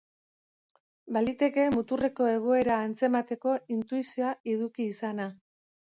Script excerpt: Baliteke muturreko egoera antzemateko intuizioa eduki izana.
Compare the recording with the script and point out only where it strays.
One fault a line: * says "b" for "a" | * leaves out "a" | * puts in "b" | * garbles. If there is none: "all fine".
all fine